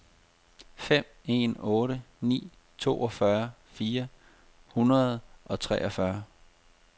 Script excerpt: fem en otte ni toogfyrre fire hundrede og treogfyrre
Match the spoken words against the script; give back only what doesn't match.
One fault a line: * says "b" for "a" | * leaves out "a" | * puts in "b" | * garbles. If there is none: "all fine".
all fine